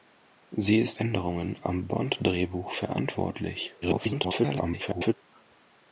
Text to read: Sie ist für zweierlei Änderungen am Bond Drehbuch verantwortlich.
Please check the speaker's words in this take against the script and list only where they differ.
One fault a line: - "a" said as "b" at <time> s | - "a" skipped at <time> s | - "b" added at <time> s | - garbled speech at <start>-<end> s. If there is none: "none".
- "für zweierlei" skipped at 1.0 s
- garbled speech at 3.8-5.1 s